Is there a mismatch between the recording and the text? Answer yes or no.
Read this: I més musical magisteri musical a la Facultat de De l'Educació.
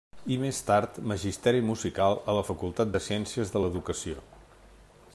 yes